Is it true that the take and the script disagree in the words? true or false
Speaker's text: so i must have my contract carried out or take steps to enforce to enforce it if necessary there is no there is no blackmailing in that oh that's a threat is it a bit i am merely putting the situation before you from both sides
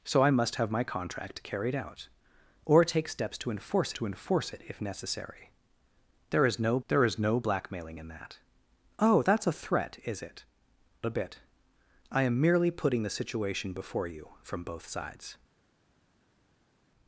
false